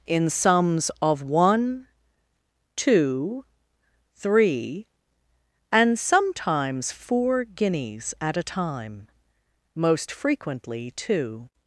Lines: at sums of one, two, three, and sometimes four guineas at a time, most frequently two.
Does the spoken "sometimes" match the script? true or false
true